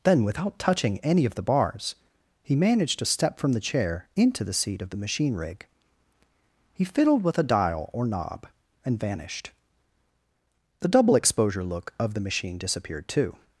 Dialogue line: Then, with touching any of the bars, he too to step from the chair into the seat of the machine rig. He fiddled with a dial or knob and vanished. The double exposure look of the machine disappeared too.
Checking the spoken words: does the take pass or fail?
fail